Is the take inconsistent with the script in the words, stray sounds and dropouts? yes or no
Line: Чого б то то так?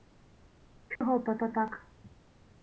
yes